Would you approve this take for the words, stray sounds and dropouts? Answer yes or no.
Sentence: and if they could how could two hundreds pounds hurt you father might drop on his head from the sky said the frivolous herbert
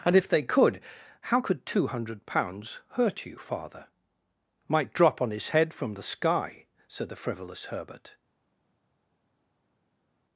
no